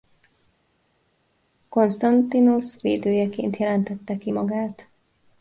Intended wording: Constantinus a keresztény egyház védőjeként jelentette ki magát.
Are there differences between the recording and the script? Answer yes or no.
yes